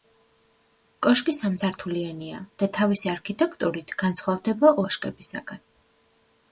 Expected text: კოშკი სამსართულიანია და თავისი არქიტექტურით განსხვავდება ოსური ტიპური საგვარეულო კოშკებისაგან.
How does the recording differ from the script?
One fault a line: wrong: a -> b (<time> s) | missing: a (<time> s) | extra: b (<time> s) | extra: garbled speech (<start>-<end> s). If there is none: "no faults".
missing: ოსური ტიპური საგვარეულო (4.8 s)